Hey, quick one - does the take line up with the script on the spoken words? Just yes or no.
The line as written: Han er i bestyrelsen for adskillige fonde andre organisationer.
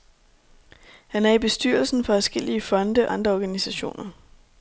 yes